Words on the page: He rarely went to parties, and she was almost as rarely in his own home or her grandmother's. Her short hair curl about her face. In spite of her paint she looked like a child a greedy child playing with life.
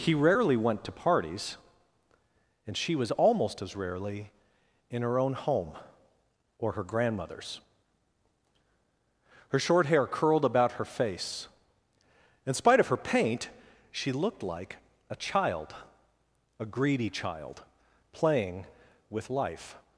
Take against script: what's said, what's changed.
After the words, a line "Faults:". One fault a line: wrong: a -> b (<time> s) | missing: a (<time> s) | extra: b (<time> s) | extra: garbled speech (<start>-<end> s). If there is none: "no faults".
He rarely went to parties, and she was almost as rarely in her own home or her grandmother's. Her short hair curled about her face. In spite of her paint she looked like a child a greedy child playing with life.
Faults:
wrong: his -> her (5.0 s)
wrong: curl -> curled (10.1 s)